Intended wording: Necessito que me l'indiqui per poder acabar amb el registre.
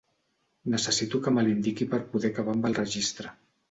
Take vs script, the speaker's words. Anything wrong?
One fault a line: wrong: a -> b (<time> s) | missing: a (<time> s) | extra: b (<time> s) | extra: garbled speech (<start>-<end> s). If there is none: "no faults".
no faults